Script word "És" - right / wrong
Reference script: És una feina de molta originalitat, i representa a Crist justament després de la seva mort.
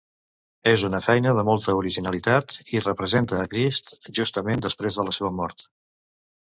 right